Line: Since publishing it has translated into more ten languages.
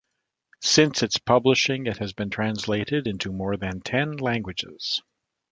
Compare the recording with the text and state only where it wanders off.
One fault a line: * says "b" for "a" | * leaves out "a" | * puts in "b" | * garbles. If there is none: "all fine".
* puts in "its"
* puts in "been"
* puts in "than"